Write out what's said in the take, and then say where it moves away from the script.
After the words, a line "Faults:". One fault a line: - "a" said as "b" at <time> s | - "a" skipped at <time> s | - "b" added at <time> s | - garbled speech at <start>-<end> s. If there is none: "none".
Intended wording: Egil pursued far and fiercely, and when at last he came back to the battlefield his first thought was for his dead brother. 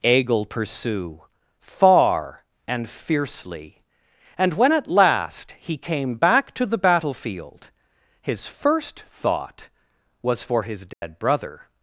Egil pursue far and fiercely, and when at last he came back to the battlefield his first thought was for his dead brother.
Faults:
- "pursued" said as "pursue" at 0.4 s